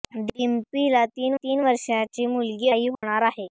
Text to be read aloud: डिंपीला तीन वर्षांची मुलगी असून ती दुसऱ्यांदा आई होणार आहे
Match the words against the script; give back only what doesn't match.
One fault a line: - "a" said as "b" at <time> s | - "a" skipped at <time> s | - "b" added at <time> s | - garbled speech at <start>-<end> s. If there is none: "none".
- "तीन" added at 1.3 s
- "असून ती दुसऱ्यांदा" skipped at 2.7 s